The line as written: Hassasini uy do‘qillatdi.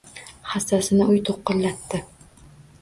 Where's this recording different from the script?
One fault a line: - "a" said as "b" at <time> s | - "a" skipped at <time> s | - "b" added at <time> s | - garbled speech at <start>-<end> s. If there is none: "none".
none